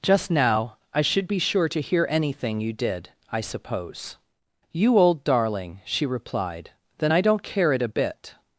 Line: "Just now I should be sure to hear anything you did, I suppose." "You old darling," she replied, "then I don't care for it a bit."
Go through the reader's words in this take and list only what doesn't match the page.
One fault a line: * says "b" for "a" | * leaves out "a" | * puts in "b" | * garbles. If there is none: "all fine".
* leaves out "for"